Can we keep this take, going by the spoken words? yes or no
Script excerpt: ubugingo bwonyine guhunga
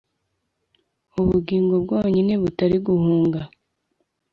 no